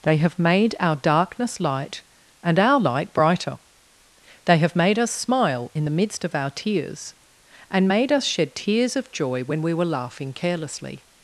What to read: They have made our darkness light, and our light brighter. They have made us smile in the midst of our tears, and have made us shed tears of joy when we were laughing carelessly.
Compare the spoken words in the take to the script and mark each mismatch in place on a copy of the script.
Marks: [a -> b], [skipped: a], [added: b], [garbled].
They have made our darkness light, and our light brighter. They have made us smile in the midst of our tears, and [skipped: have] made us shed tears of joy when we were laughing carelessly.